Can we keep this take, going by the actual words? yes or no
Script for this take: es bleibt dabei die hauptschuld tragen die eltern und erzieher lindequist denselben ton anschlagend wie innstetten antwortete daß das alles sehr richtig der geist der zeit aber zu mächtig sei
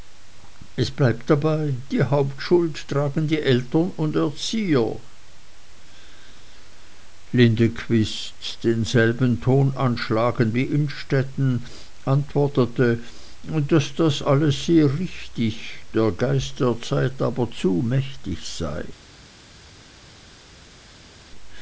yes